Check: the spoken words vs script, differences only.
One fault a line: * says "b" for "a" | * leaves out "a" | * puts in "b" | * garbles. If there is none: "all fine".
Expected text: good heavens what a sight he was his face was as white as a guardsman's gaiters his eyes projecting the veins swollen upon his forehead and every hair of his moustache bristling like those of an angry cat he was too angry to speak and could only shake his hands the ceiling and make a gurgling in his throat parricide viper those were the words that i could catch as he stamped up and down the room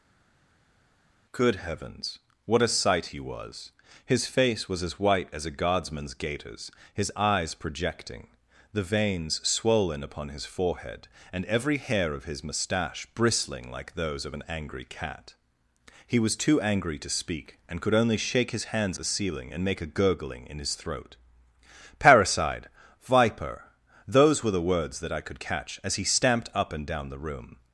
all fine